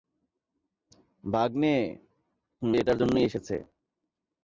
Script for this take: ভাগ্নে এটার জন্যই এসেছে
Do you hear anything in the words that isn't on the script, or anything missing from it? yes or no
no